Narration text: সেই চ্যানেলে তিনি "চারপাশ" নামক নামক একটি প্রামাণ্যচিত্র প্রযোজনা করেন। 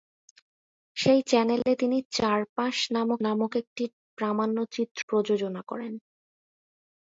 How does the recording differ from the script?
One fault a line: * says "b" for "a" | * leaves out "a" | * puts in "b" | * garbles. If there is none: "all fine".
all fine